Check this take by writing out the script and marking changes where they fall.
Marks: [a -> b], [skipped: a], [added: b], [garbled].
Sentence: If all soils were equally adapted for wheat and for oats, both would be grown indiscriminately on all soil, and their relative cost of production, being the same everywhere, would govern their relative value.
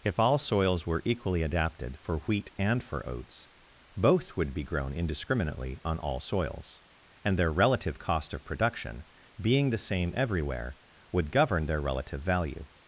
If all soils were equally adapted for wheat and for oats, both would be grown indiscriminately on all [soil, -> soils] and their relative cost of production, being the same everywhere, would govern their relative value.